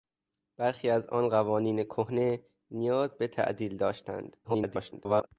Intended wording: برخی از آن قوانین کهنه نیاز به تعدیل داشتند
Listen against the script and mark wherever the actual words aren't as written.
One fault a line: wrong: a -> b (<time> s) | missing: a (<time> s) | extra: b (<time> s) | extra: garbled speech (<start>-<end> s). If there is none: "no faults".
extra: garbled speech (4.4-5.3 s)